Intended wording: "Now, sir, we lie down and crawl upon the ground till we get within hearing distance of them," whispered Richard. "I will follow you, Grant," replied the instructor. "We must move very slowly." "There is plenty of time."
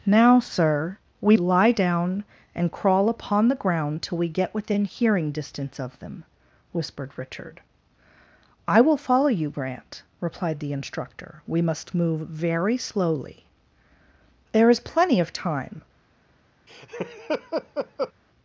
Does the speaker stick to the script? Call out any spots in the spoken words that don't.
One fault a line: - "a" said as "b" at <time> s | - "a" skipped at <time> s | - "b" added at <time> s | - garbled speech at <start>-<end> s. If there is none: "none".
none